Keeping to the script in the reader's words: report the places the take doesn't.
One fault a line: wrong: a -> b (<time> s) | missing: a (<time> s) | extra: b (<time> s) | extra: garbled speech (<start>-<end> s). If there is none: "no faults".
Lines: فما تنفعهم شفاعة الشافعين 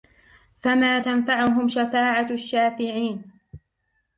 no faults